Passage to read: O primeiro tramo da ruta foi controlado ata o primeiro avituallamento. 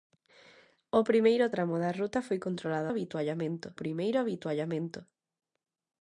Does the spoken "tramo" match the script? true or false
true